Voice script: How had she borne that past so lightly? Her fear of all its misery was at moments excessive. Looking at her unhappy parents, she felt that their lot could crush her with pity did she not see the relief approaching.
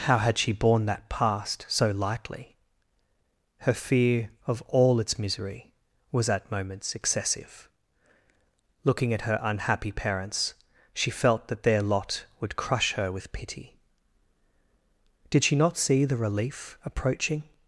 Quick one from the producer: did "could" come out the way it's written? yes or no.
no